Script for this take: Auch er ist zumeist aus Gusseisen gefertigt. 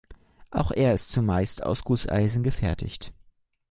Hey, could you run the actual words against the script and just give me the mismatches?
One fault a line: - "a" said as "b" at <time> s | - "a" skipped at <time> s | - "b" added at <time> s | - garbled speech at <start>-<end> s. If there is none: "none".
none